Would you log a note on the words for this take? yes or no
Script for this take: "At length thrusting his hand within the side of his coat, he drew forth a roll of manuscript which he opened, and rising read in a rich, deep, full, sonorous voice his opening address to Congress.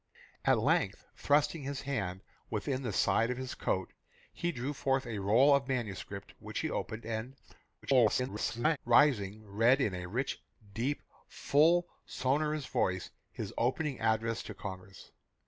yes